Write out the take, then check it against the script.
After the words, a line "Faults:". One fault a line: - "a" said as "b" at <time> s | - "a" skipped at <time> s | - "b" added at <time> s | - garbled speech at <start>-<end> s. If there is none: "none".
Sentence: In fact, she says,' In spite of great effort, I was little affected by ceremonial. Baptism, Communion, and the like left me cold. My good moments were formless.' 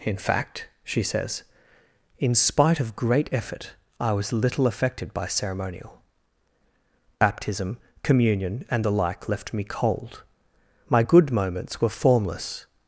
In fact, she says,' In spite of great effort, I was little affected by ceremonial. Baptism, Communion, and the like left me cold. My good moments were formless.'
Faults:
none